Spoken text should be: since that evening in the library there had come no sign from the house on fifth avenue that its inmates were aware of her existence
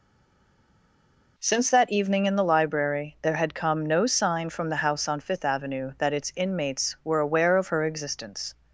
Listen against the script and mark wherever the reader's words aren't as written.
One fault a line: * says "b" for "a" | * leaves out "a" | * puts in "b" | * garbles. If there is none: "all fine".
all fine